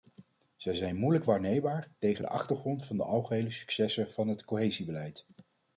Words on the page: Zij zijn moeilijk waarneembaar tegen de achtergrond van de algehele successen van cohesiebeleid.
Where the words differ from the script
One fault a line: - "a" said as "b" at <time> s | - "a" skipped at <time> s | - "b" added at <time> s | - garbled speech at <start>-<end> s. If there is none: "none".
- "het" added at 4.3 s